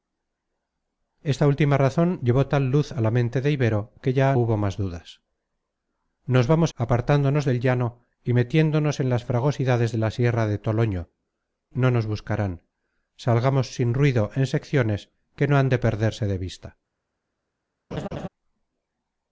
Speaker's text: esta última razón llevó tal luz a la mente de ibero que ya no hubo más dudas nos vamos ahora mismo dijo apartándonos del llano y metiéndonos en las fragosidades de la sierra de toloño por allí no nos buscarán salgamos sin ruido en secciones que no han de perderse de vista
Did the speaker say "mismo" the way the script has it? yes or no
no